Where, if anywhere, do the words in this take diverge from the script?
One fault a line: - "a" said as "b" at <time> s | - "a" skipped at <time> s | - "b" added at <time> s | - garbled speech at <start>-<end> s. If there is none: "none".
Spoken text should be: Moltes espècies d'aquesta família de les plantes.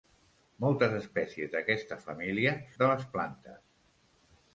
none